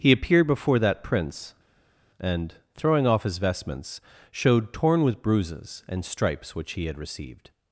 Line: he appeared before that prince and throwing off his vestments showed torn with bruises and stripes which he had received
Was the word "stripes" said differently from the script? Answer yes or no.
no